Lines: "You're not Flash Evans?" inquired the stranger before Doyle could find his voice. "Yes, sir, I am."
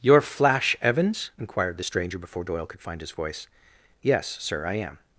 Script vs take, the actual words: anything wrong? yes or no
yes